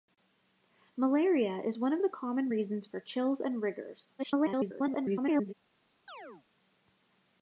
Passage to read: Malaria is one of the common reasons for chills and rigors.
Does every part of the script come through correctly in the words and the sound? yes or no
no